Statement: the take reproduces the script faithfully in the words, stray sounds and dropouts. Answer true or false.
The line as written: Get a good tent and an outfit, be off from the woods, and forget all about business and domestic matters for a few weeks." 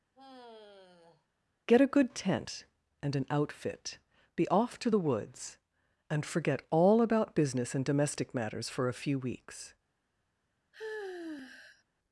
false